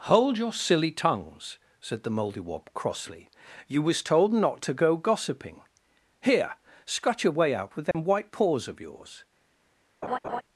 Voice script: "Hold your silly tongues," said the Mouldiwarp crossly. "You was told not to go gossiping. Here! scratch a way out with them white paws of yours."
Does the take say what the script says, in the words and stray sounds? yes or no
no